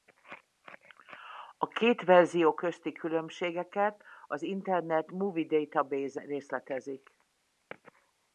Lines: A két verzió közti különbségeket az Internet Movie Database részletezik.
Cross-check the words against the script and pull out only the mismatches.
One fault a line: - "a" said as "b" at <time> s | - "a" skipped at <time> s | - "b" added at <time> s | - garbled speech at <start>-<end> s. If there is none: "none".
none